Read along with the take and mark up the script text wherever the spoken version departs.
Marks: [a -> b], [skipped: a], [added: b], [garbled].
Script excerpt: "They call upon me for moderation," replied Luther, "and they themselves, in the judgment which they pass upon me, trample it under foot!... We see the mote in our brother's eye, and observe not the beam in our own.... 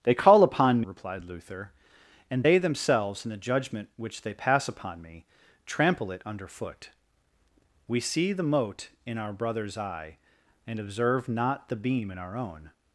"They call upon [skipped: me for moderation,"] replied Luther, "and they themselves, in the judgment which they pass upon me, trample it under foot!... We see the mote in our brother's eye, and observe not the beam in our own....